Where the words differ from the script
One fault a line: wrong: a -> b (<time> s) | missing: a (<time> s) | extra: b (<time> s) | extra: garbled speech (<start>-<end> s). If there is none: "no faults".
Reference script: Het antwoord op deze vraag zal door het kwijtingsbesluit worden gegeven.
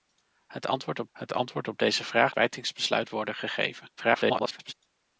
wrong: deze vraag zal door het -> het antwoord op deze vraag (1.1 s)
extra: garbled speech (4.0-4.7 s)